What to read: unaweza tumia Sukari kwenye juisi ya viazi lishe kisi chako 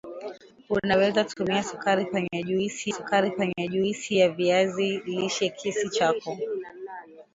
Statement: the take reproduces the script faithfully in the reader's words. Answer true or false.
false